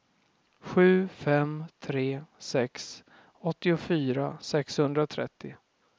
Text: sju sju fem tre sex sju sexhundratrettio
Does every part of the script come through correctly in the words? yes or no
no